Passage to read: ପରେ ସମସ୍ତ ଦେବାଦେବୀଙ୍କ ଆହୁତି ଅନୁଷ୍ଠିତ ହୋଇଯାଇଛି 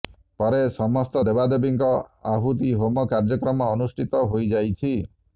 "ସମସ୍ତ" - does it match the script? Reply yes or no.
yes